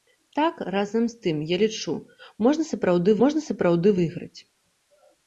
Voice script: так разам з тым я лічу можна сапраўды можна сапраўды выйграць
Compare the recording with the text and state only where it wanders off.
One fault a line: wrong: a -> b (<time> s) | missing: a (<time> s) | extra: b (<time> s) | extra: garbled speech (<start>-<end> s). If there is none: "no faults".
no faults